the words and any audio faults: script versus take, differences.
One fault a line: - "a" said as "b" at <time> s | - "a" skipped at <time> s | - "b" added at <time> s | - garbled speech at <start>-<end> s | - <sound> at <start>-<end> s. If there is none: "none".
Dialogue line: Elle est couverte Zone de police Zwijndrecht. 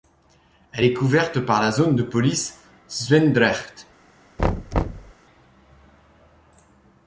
- "par la" added at 1.4 s
- thud at 4.4-5.1 s